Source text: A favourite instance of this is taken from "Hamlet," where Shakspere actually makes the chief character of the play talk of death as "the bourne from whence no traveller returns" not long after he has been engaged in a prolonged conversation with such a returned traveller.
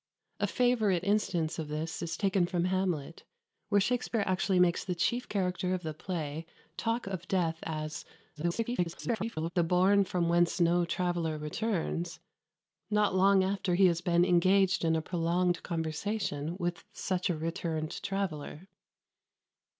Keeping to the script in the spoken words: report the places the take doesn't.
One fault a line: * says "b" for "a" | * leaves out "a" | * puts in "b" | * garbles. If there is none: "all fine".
* garbles